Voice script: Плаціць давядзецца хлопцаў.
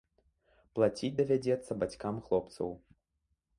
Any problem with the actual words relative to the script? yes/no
yes